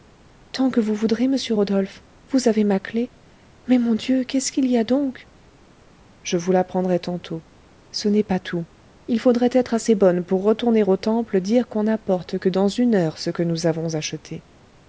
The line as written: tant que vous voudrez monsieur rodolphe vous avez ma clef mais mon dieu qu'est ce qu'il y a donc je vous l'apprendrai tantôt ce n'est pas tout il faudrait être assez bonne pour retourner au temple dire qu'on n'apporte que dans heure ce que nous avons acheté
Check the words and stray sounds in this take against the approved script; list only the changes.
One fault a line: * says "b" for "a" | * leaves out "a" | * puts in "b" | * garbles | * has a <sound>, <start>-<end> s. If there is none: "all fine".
* puts in "une"